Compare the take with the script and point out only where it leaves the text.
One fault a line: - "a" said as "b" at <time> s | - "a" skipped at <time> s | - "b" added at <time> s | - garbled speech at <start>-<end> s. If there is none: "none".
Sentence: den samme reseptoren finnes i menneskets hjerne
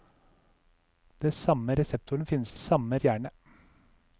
- "menneskets" said as "samme" at 2.5 s